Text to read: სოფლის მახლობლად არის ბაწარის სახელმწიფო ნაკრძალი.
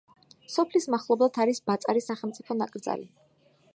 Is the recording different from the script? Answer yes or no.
no